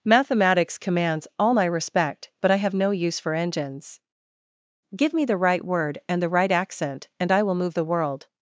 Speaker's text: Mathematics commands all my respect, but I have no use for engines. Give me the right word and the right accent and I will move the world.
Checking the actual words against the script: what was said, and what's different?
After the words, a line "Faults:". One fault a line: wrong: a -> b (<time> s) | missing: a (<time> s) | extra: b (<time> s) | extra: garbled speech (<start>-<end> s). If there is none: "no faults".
Mathematics commands all my respect, but I have no use for engines. Give me the right word and the right accent and I will move the world.
Faults:
no faults